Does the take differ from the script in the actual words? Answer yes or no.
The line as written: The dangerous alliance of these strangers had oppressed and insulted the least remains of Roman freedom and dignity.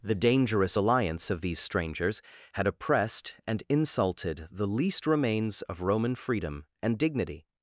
no